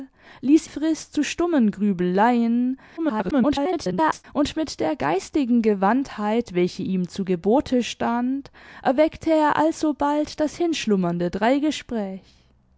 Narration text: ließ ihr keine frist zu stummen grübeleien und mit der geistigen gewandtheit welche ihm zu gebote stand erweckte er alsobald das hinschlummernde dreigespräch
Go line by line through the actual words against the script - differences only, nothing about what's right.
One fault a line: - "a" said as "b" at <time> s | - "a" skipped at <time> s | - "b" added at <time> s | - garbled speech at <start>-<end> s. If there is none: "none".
- "ihr keine" skipped at 0.7 s
- garbled speech at 3.0-4.2 s